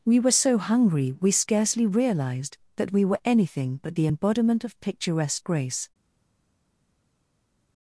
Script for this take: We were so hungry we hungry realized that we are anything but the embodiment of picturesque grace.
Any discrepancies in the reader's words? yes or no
yes